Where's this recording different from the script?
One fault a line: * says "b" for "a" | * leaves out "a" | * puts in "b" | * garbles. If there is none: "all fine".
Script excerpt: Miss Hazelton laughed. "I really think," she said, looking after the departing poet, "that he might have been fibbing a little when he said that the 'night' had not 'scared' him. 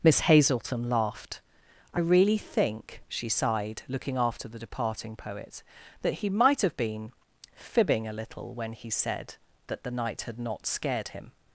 * says "sighed" for "said"